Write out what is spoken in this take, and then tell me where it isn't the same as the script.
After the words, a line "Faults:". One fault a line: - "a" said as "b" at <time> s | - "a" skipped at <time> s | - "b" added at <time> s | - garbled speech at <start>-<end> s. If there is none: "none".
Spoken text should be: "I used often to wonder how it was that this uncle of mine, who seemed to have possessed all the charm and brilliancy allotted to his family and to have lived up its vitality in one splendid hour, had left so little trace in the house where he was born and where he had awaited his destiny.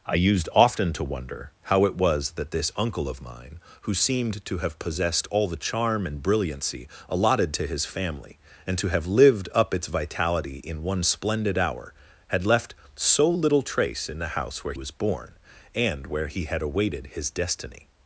"I used often to wonder how it was that this uncle of mine, who seemed to have possessed all the charm and brilliancy allotted to his family and to have lived up its vitality in one splendid hour, had left so little trace in the house where was born and where he had awaited his destiny.
Faults:
- "he" skipped at 14.7 s